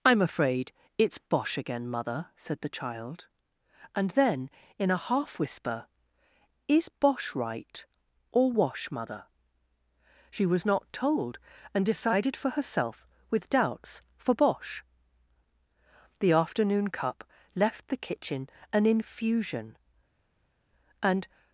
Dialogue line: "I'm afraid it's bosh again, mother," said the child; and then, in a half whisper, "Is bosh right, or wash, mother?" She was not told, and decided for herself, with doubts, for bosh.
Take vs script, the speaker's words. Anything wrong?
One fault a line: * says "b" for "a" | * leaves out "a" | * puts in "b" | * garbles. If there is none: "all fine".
* puts in "The afternoon cup left the kitchen an infusion and"